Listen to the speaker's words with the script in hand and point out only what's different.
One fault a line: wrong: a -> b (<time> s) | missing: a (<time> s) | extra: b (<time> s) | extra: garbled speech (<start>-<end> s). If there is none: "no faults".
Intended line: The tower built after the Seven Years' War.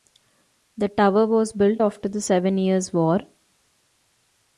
extra: was (1.3 s)